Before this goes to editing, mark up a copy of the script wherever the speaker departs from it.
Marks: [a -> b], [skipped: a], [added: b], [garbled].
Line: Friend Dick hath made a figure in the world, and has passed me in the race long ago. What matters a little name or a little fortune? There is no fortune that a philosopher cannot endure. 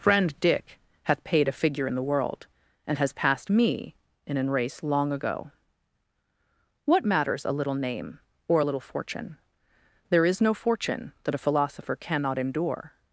Friend Dick hath [made -> paid] a figure in the world, and has passed me in [the -> an] race long ago. What matters a little name or a little fortune? There is no fortune that a philosopher cannot endure.